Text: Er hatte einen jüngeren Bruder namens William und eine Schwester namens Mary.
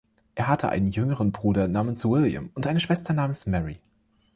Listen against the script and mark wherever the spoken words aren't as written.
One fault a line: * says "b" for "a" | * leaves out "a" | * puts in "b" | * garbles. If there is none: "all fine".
all fine